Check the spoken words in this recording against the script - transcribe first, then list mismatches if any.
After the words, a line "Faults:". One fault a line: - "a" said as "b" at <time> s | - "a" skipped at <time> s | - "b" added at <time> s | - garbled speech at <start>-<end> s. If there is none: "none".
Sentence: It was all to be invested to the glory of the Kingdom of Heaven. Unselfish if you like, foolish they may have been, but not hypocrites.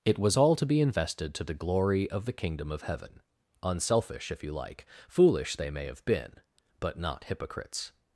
It was all to be invested to the glory of the Kingdom of Heaven. Unselfish if you like, foolish they may have been, but not hypocrites.
Faults:
none